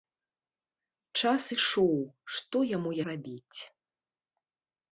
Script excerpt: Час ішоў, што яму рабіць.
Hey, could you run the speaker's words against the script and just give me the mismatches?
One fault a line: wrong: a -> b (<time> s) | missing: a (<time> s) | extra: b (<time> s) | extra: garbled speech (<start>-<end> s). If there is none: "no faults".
no faults